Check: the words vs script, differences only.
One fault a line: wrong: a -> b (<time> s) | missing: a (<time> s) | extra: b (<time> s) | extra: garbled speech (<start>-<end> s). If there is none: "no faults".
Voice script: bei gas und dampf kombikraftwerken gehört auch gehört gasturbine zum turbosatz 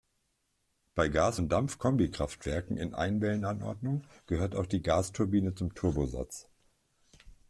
extra: in einwellen"anordnung (2.8 s)
wrong: gehört -> die (4.7 s)